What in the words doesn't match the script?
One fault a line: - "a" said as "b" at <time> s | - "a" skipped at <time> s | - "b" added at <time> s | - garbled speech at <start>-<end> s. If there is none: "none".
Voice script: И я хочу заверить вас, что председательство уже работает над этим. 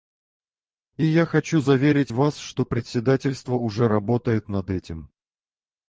none